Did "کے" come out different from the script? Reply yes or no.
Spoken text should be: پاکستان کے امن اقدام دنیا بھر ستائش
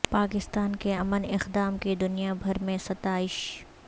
no